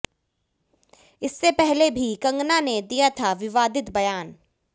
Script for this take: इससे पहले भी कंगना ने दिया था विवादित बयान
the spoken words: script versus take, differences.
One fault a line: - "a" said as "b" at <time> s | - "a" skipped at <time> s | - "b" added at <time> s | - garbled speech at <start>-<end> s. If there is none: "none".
none